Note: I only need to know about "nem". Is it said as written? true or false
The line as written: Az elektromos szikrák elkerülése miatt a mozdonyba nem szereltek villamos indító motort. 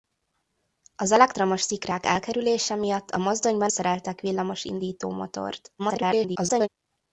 false